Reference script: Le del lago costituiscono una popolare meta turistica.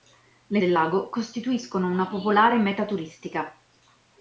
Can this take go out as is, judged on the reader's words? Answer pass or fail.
pass